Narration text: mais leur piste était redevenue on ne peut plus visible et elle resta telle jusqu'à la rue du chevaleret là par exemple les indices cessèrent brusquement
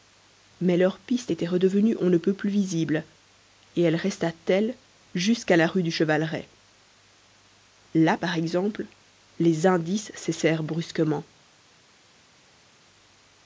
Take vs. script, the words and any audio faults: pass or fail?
pass